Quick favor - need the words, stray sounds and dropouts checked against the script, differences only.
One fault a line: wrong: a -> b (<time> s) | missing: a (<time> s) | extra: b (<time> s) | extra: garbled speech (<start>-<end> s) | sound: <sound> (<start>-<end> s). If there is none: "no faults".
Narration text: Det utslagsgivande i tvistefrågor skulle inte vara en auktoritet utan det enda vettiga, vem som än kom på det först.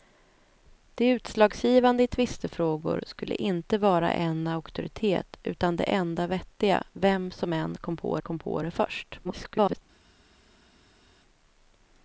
extra: kom på (8.2 s)
extra: garbled speech (9.2-9.8 s)